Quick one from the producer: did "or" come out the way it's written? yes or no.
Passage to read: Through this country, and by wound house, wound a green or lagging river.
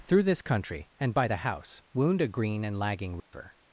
no